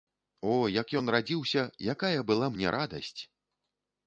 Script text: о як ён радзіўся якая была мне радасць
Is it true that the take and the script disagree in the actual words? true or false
false